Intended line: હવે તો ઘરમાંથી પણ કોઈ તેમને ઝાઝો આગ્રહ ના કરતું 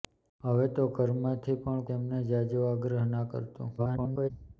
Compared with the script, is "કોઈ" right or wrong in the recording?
wrong